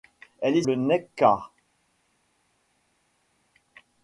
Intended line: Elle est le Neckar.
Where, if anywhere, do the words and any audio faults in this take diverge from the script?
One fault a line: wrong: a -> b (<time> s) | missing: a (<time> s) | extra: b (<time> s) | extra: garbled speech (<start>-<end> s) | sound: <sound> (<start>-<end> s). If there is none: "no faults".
no faults